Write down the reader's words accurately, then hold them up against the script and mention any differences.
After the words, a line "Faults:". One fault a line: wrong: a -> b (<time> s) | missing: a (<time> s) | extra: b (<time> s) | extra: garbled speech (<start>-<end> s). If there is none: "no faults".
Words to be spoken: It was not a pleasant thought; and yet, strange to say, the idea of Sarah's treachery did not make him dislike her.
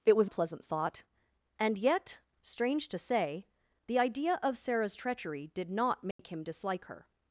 It was a pleasant thought; and yet, strange to say, the idea of Sarah's treachery did not make him dislike her.
Faults:
missing: not (0.3 s)